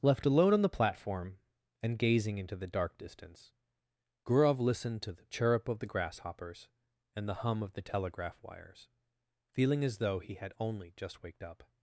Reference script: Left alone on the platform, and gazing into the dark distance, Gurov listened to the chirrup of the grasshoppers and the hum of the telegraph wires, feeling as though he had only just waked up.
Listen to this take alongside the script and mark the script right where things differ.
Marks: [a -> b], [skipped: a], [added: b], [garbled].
Left alone on the platform, and gazing into the dark distance, Gurov listened to the chirrup of the grasshoppers and the hum of the telegraph wires, feeling as though he had only just waked up.